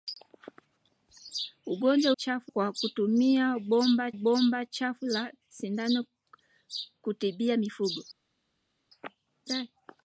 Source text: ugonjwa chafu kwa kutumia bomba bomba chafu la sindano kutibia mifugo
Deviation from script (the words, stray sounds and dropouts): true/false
false